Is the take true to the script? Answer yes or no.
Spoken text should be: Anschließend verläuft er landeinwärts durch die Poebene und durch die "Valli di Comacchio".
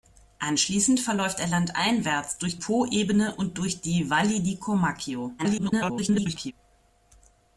no